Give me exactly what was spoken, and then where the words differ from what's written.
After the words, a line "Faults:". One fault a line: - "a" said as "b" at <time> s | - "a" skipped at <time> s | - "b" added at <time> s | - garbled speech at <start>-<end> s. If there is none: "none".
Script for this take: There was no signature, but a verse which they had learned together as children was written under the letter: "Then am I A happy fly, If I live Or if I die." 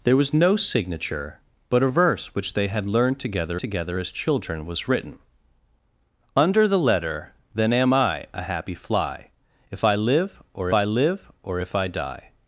There was no signature, but a verse which they had learned together together as children was written under the letter: "Then am I A happy fly, If I live Or I live Or if I die."
Faults:
- "together" added at 3.6 s
- "I live Or" added at 10.7 s